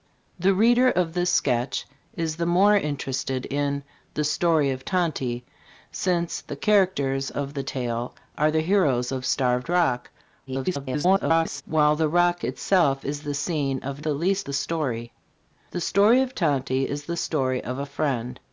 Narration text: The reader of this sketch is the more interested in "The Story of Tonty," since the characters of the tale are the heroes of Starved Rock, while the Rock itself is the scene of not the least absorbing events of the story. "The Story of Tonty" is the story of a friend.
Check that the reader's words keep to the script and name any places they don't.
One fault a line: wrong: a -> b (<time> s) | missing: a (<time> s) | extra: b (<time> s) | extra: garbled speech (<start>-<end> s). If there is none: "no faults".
extra: garbled speech (10.5-11.6 s)
missing: not (14.0 s)
missing: absorbing events of (14.5 s)